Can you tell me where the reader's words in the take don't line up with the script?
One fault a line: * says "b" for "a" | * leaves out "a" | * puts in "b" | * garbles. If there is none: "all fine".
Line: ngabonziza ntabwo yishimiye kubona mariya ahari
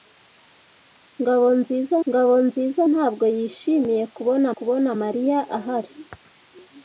* puts in "ngabonziza"
* puts in "kubona"